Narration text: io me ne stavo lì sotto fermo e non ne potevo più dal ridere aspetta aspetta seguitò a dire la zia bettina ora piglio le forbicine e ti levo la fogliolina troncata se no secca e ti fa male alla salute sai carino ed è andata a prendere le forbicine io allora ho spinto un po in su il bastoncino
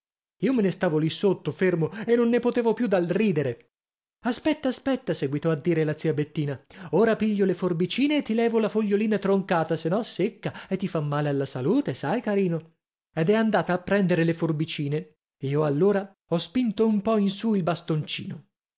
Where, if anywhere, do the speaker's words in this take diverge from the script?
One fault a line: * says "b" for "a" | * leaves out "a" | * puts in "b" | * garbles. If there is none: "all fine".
all fine